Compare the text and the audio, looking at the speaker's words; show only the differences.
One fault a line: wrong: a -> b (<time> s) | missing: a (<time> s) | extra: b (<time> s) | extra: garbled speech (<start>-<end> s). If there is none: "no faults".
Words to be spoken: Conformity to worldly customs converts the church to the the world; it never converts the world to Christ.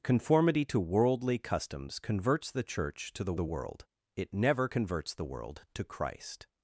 no faults